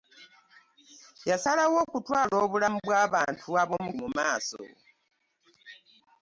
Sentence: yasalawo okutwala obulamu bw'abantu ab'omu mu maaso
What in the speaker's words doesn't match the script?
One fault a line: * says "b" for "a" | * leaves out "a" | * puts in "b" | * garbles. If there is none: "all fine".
all fine